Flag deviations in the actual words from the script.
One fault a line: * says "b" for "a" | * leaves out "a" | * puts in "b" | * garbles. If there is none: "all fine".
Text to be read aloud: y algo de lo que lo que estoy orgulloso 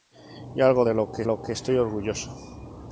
all fine